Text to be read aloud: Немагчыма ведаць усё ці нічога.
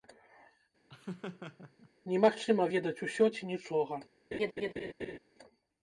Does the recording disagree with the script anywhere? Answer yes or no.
no